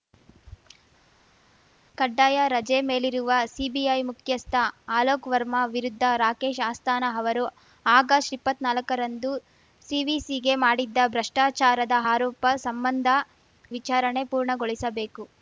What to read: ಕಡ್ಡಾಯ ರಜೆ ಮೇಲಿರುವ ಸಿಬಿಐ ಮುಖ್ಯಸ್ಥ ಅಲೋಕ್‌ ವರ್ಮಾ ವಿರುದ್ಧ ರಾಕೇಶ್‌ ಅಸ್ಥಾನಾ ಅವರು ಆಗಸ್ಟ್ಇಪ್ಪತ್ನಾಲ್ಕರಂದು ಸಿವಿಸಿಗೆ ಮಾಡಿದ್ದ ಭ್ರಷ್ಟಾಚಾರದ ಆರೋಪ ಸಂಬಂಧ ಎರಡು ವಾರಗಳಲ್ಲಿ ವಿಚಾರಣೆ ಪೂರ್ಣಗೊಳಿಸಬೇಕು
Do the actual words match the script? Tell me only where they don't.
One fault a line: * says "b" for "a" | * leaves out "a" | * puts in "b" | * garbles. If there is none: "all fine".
* leaves out "ಎರಡು ವಾರಗಳಲ್ಲಿ"